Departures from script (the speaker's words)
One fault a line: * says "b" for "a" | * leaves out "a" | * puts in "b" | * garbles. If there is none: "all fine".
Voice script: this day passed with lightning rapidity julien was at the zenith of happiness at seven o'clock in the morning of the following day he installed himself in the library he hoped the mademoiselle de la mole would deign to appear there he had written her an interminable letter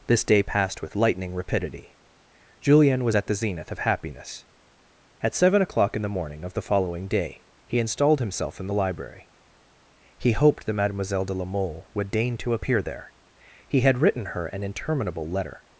* says "that" for "the"